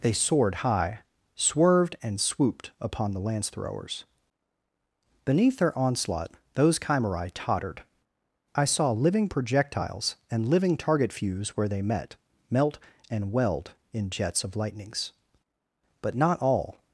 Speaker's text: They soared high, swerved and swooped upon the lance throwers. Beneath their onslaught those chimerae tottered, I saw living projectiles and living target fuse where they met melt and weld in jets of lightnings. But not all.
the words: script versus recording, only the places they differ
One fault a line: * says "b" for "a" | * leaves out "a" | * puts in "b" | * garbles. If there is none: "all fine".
all fine